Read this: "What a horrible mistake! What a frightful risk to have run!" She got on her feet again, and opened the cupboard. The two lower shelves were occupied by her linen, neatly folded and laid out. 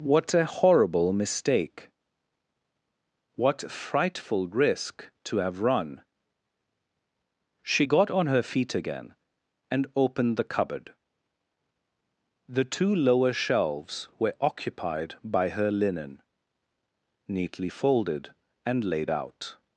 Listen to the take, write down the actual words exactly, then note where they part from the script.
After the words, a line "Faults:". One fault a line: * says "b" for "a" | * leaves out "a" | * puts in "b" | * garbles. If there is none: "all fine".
"What a horrible mistake! What frightful risk to have run!" She got on her feet again, and opened the cupboard. The two lower shelves were occupied by her linen, neatly folded and laid out.
Faults:
* leaves out "a"